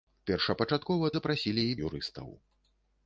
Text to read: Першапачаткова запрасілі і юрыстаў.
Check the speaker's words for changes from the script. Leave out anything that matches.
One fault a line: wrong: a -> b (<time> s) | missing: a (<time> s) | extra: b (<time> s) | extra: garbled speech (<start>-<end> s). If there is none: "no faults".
no faults